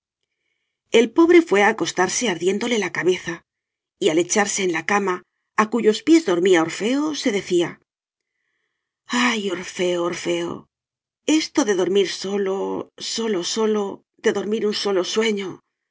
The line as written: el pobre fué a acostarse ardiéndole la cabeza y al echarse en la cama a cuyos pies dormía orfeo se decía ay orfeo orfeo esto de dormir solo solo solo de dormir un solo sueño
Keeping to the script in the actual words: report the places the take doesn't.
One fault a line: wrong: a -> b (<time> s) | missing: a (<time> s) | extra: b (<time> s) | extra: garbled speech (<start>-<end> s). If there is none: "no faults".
no faults